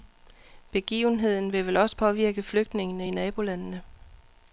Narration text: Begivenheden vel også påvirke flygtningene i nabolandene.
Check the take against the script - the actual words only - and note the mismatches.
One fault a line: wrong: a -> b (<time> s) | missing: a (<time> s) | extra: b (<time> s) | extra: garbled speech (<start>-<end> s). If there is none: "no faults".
extra: vil (1.5 s)